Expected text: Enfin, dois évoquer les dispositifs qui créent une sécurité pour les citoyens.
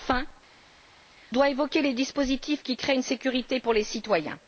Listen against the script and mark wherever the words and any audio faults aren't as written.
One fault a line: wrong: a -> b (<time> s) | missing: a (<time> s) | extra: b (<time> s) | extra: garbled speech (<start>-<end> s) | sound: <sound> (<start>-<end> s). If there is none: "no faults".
no faults